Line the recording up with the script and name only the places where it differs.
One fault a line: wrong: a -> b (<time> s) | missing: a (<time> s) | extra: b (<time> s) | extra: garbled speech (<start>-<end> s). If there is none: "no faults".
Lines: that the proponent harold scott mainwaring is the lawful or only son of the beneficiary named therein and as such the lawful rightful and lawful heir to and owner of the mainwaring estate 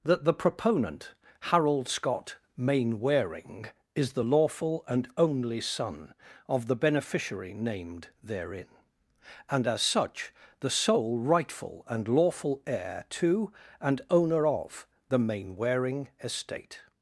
wrong: or -> and (4.9 s)
wrong: lawful -> sole (10.7 s)